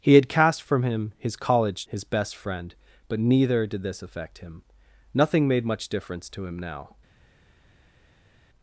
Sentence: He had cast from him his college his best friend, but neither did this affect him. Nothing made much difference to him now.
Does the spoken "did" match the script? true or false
true